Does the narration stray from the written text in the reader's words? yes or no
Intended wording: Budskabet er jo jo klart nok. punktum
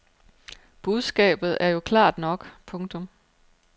yes